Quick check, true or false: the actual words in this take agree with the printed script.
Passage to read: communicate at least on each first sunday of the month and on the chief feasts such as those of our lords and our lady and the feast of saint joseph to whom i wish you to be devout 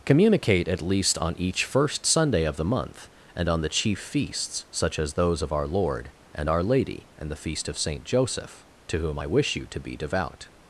false